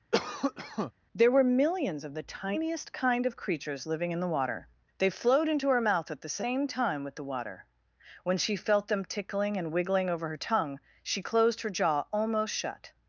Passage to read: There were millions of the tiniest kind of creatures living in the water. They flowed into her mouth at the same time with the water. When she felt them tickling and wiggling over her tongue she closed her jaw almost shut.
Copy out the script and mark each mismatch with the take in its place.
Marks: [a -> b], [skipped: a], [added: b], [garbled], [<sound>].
[cough] There were millions of the tiniest kind of creatures living in the water. They flowed into her mouth at the same time with the water. When she felt them tickling and wiggling over her tongue she closed her jaw almost shut.